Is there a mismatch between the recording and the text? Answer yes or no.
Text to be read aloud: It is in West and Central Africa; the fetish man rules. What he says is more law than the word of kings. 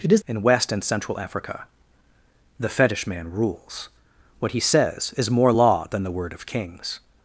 no